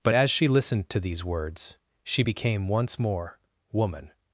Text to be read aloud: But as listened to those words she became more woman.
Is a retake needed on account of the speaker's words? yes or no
yes